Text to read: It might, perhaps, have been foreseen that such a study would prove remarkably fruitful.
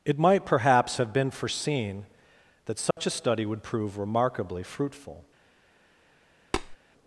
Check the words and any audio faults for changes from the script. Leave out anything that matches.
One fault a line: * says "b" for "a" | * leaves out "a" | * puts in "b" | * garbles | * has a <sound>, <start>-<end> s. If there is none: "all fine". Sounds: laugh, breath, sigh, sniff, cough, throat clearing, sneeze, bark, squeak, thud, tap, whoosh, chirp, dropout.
* has a dropout, 2.9-3.0 s
* has a tap, 6.5-6.8 s